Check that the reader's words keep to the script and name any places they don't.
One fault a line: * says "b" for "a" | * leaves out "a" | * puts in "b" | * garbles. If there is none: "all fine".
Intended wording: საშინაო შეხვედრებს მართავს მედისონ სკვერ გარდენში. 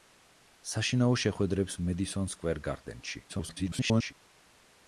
* leaves out "მართავს"
* garbles